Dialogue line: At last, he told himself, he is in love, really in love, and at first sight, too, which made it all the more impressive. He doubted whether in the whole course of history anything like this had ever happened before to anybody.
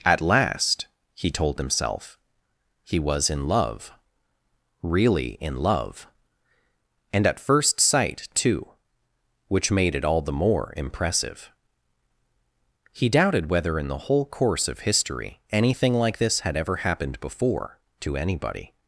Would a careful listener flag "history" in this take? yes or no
no